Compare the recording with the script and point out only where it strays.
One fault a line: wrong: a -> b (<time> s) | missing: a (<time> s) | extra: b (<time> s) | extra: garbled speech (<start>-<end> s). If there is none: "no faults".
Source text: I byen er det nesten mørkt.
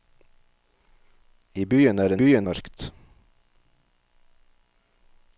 wrong: nesten -> byen (2.1 s)